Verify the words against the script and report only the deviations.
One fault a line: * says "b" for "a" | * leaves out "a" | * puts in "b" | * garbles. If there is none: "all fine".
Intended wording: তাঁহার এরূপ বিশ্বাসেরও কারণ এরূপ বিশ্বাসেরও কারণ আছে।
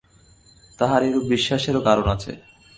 * leaves out "এরূপ বিশ্বাসেরও কারণ"